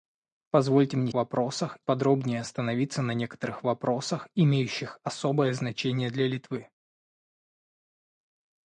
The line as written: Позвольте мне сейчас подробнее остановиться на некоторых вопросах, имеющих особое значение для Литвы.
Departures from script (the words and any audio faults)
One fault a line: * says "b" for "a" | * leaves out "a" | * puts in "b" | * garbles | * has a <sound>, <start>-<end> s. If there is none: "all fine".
* says "вопросах" for "сейчас"